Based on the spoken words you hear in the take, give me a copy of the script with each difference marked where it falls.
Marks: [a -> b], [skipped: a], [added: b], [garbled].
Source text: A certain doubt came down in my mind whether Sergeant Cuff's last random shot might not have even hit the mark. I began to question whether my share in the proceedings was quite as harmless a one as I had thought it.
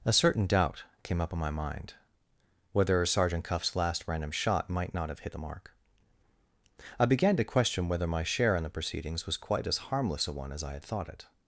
A certain doubt came [down -> up] in my mind whether Sergeant Cuff's last random shot might not have [skipped: even] hit the mark. I began to question whether my share in the proceedings was quite as harmless a one as I had thought it.